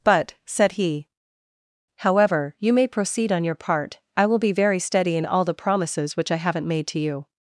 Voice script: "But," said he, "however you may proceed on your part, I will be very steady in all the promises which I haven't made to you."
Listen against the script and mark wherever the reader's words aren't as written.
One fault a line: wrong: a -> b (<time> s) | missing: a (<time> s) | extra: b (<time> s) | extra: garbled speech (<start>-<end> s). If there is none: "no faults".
no faults